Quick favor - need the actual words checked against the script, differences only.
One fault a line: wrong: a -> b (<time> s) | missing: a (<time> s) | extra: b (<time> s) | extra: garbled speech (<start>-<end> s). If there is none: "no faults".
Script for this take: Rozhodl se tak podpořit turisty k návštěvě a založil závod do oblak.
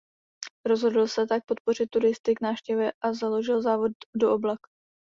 no faults